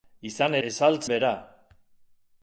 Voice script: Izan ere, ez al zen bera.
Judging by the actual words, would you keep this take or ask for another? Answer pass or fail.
fail